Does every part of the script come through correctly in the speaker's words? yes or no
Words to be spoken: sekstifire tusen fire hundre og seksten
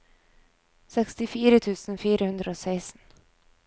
yes